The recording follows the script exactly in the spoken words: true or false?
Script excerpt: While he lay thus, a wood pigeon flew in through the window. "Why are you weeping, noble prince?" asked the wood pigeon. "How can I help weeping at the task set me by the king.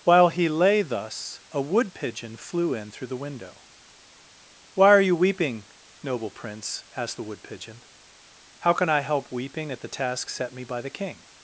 true